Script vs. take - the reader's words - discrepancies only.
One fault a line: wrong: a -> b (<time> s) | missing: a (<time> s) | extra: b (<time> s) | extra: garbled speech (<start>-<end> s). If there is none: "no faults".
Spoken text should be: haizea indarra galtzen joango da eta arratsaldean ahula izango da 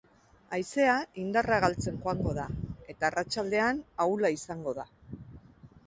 no faults